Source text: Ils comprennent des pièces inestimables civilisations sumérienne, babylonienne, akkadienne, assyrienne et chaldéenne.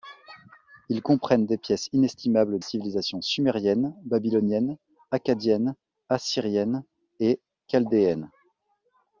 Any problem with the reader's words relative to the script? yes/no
no